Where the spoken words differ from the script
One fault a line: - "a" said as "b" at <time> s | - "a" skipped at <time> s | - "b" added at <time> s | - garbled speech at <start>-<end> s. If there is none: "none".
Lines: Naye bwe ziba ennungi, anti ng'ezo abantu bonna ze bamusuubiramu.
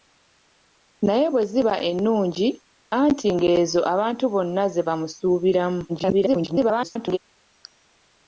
- garbled speech at 5.9-7.2 s